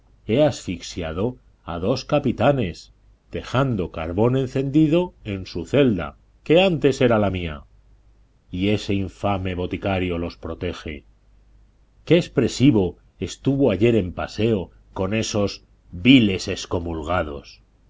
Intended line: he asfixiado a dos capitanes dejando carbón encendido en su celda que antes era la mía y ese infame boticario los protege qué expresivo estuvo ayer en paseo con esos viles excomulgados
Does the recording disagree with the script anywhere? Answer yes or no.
no